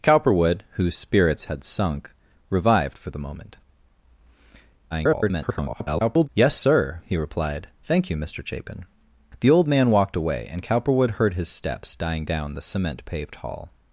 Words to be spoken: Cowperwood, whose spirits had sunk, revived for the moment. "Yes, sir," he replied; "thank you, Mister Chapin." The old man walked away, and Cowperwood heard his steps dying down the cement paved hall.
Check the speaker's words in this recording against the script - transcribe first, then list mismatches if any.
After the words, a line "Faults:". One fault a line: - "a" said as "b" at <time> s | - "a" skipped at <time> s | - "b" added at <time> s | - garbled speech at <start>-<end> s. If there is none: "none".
Cowperwood, whose spirits had sunk, revived for the moment. [garbled] "Yes, sir," he replied; "thank you, Mister Chapin." The old man walked away, and Cowperwood heard his steps dying down the cement paved hall.
Faults:
- garbled speech at 4.9-6.3 s